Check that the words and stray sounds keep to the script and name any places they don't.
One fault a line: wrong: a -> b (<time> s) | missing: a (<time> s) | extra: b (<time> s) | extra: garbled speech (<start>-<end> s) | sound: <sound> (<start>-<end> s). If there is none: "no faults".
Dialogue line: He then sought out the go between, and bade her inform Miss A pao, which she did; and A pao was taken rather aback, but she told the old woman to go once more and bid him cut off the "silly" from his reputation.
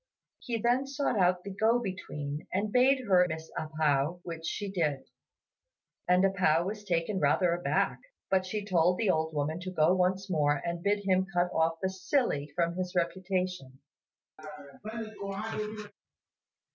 missing: inform (3.2 s)
sound: laugh (14.4-15.9 s)